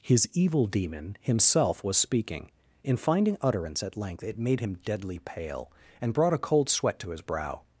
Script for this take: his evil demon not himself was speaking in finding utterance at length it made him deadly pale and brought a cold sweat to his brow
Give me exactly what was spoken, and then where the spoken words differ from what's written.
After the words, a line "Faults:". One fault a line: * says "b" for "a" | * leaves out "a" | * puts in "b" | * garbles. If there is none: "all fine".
his evil demon himself was speaking in finding utterance at length it made him deadly pale and brought a cold sweat to his brow
Faults:
* leaves out "not"